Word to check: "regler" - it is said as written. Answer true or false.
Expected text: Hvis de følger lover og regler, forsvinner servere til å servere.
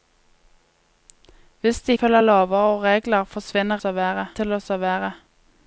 true